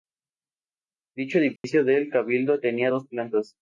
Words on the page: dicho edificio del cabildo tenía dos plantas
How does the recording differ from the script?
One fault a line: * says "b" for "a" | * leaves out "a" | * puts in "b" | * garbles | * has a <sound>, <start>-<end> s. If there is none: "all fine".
* has a dropout, 1.6-1.6 s